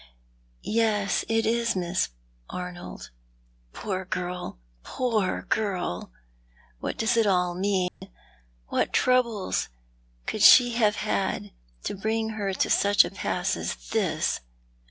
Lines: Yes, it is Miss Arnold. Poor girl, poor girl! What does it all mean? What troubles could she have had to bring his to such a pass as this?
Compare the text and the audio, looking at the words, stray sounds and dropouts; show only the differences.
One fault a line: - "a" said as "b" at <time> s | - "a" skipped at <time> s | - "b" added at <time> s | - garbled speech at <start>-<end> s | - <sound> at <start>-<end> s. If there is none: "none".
- dropout at 7.9-8.0 s
- "his" said as "her" at 12.3 s